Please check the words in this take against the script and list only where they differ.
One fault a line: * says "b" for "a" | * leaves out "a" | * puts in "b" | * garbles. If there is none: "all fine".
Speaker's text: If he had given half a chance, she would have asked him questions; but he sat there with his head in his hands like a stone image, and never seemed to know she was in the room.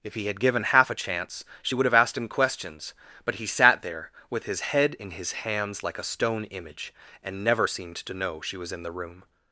all fine